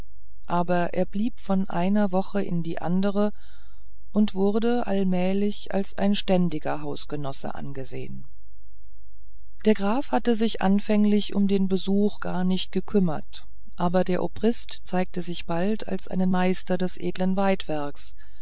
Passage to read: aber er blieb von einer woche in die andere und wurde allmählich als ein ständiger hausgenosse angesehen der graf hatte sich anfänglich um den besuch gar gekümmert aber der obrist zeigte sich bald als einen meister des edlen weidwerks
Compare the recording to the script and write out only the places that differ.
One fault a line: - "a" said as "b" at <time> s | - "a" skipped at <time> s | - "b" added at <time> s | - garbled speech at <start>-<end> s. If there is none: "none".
- "nicht" added at 12.4 s